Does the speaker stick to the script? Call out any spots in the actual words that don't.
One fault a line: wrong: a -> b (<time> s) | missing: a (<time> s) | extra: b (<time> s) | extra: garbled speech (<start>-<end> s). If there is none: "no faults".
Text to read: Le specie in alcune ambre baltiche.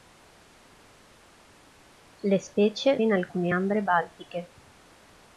no faults